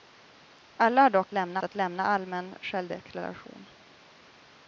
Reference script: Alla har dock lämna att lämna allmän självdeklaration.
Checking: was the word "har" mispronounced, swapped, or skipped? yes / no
no